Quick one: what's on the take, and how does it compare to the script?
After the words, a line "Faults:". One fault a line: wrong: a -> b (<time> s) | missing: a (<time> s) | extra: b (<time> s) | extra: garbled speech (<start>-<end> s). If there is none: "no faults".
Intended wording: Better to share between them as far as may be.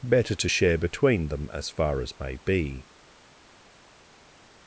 Better to share between them as far as may be.
Faults:
no faults